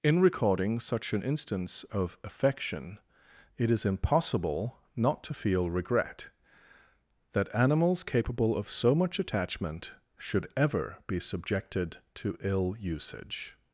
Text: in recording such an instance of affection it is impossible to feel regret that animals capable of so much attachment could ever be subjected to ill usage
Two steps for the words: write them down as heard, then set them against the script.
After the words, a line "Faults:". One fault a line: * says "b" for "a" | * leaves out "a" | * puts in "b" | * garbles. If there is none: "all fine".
in recording such an instance of affection it is impossible not to feel regret that animals capable of so much attachment should ever be subjected to ill usage
Faults:
* puts in "not"
* says "should" for "could"